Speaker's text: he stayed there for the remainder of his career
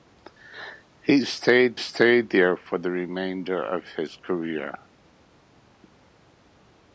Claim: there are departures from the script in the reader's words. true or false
true